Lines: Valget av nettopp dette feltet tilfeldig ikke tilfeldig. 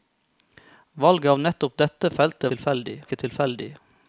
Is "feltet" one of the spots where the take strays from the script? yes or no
no